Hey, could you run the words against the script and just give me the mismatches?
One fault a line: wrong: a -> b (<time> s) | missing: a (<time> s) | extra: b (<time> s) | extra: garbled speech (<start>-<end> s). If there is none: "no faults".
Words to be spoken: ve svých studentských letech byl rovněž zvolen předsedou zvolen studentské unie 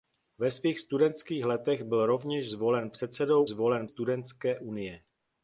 no faults